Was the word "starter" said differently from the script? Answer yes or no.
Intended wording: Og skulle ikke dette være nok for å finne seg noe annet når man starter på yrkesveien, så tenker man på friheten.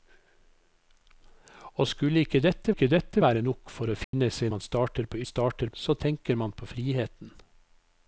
no